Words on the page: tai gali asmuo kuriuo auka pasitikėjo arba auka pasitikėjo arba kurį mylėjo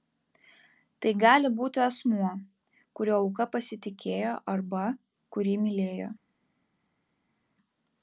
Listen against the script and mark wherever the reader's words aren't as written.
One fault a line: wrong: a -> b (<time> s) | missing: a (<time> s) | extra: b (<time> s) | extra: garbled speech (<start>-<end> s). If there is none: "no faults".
extra: būti (1.6 s)
missing: auka pasitikėjo arba (4.9 s)